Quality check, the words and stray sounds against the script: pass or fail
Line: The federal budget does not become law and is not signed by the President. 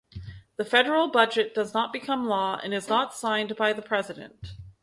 pass